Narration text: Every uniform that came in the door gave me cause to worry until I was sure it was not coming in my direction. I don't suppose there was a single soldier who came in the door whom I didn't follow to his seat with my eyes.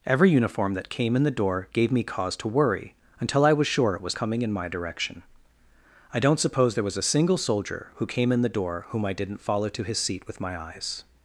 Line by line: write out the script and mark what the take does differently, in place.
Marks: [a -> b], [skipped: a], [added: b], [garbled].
Every uniform that came in the door gave me cause to worry until I was sure it was [skipped: not] coming in my direction. I don't suppose there was a single soldier who came in the door whom I didn't follow to his seat with my eyes.